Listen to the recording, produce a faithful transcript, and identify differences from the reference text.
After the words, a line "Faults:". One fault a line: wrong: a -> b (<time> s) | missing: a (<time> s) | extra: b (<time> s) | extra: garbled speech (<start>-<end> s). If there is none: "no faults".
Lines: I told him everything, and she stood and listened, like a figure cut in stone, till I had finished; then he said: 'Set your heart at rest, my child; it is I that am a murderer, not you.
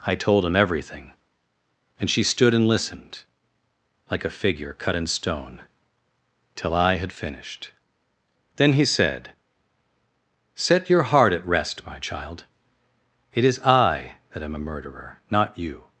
I told him everything, and she stood and listened, like a figure cut in stone, till I had finished; then he said: 'Set your heart at rest, my child; it is I that am a murderer, not you.
Faults:
no faults